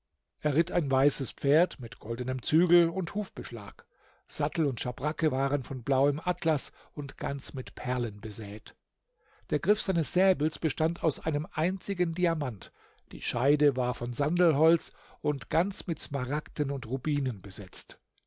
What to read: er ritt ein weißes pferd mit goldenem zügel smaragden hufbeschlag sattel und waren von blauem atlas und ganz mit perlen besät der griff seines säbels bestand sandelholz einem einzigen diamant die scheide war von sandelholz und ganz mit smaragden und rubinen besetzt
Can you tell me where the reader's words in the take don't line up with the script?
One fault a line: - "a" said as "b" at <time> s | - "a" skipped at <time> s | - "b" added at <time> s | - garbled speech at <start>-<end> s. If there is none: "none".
- "smaragden" said as "und" at 2.9 s
- "schabracke" added at 4.8 s
- "sandelholz" said as "aus" at 11.0 s